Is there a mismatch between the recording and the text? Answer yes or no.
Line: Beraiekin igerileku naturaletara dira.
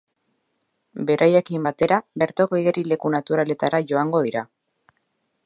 yes